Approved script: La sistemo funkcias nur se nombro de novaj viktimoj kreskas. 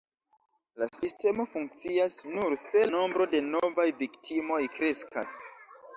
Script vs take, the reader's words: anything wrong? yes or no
no